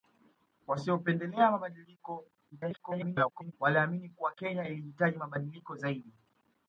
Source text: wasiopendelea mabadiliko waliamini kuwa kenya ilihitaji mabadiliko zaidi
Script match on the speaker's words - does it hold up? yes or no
no